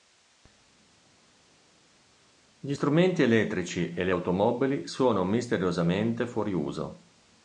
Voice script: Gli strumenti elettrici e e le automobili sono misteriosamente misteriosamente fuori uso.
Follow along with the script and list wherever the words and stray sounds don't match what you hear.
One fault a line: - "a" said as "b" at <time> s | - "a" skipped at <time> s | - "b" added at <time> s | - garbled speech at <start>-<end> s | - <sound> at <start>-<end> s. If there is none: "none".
- "e" skipped at 4.0 s
- "misteriosamente" skipped at 6.3 s